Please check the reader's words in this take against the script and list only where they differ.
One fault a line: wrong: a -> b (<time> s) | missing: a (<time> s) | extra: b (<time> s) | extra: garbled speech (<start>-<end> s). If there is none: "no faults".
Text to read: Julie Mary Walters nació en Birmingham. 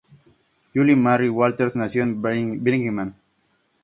no faults